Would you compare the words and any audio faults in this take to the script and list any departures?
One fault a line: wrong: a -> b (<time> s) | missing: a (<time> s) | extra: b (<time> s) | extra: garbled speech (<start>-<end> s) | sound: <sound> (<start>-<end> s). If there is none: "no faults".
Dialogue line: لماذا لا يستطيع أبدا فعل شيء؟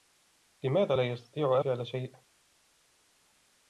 missing: أبدا (1.6 s)